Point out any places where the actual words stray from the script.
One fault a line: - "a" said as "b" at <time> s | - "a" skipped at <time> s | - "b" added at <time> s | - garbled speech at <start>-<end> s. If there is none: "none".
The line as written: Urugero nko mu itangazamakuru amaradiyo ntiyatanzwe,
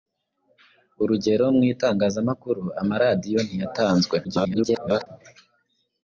- "nko" skipped at 1.4 s
- garbled speech at 4.2-5.1 s